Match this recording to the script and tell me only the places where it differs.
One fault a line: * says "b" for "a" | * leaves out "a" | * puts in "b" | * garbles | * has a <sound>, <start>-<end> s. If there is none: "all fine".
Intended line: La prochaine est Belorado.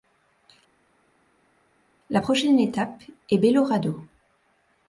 * puts in "étape"